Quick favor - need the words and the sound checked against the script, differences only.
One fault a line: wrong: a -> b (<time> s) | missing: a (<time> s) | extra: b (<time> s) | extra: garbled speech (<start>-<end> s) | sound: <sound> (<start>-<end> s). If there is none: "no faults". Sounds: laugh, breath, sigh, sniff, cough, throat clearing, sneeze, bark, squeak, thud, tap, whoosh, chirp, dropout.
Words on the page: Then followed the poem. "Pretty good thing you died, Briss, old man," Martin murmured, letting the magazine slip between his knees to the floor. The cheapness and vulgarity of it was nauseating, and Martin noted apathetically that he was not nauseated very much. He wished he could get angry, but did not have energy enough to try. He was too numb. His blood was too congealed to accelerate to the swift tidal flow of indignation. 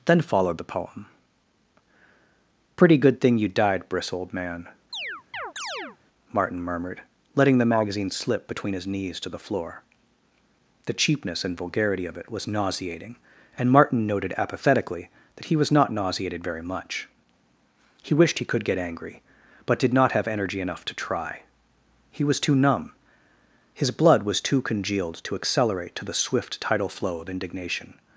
sound: chirp (4.9-6.0 s)